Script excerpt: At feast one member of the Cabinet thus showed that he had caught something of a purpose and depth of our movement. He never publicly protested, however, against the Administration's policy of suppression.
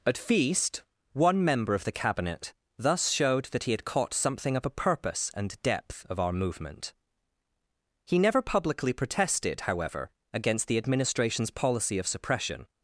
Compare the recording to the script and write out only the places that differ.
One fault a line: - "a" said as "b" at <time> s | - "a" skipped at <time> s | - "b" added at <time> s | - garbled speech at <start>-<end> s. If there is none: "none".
none